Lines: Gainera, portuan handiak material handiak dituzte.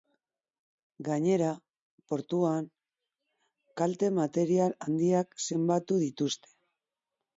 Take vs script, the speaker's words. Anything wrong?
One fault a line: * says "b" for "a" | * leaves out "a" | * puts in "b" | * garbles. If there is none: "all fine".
* says "kalte" for "handiak"
* puts in "zenbatu"